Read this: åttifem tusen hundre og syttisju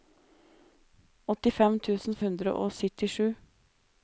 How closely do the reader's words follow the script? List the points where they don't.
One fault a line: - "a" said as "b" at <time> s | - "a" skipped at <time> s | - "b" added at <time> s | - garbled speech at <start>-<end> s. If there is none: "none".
none